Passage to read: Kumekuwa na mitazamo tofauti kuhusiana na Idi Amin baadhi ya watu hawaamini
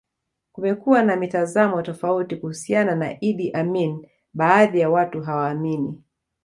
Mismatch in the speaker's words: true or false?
false